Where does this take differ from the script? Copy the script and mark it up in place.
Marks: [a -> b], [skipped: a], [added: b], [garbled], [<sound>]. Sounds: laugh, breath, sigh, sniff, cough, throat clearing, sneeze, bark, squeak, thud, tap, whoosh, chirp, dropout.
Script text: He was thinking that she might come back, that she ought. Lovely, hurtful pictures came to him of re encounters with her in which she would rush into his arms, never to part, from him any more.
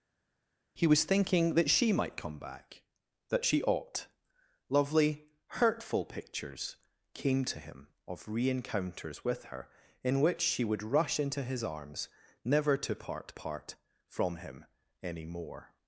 He was thinking that she might come back, that she ought. Lovely, hurtful pictures came to him of re encounters with her in which she would rush into his arms, never to part, [added: part] from him any more.